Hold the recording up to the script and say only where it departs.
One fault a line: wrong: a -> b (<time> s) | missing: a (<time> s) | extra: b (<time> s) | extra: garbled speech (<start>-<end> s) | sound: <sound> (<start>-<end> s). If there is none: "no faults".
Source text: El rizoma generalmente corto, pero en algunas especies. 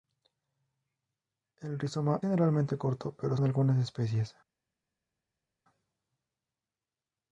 no faults